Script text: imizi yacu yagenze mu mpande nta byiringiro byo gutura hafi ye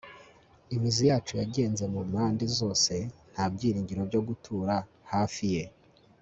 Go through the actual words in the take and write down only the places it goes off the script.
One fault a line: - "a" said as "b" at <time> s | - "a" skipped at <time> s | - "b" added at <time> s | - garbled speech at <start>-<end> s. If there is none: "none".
- "zose" added at 2.6 s